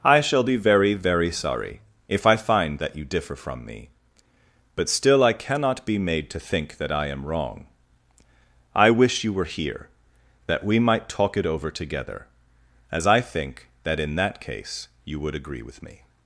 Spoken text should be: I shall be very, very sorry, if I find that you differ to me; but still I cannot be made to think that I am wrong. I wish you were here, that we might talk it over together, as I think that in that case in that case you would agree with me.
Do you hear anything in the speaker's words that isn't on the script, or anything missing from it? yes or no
yes